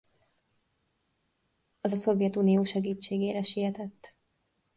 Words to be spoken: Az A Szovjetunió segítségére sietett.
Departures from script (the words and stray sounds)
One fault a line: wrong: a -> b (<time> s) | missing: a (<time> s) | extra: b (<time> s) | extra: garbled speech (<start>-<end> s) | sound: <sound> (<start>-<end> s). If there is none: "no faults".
no faults